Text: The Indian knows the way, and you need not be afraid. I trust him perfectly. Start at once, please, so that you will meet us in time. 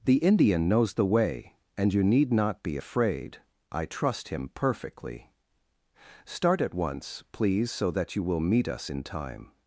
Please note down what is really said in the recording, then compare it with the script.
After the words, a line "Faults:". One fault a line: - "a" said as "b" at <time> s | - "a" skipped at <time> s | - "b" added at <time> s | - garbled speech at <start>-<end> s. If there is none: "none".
The Indian knows the way, and you need not be afraid. I trust him perfectly. Start at once, please, so that you will meet us in time.
Faults:
none